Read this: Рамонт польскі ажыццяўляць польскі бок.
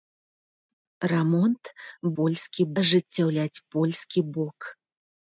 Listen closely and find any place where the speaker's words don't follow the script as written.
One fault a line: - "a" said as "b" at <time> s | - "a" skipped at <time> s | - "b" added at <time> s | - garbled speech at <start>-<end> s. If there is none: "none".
none